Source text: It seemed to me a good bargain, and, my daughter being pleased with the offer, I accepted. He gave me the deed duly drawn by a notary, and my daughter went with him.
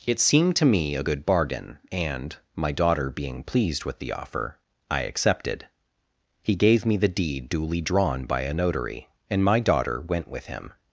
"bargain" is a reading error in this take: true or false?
false